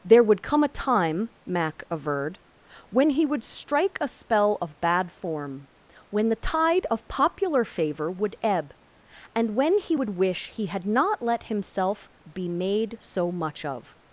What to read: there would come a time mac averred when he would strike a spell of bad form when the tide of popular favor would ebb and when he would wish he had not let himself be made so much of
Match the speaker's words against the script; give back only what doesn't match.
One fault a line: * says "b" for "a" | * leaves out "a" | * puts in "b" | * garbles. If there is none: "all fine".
all fine